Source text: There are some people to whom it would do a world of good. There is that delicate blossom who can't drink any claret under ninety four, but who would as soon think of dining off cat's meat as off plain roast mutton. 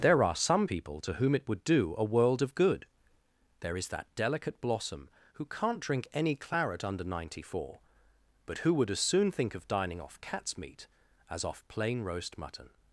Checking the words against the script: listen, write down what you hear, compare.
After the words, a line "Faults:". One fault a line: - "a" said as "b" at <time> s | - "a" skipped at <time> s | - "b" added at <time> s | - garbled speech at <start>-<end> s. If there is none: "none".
There are some people to whom it would do a world of good. There is that delicate blossom who can't drink any claret under ninety four, but who would as soon think of dining off cat's meat as off plain roast mutton.
Faults:
none